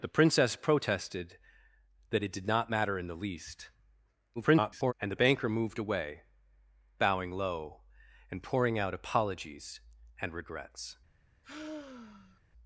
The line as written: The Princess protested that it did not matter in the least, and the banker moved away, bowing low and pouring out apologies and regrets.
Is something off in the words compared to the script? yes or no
yes